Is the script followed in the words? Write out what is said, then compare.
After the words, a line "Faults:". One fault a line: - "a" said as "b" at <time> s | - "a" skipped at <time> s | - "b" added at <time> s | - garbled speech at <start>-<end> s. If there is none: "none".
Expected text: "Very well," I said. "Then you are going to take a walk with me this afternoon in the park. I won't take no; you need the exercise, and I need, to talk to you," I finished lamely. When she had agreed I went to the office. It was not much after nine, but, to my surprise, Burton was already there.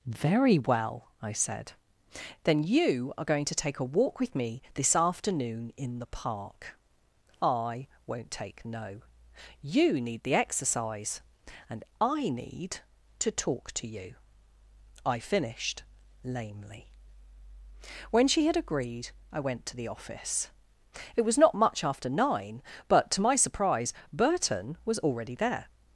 "Very well," I said. "Then you are going to take a walk with me this afternoon in the park. I won't take no; you need the exercise, and I need, to talk to you," I finished lamely. When she had agreed I went to the office. It was not much after nine, but, to my surprise, Burton was already there.
Faults:
none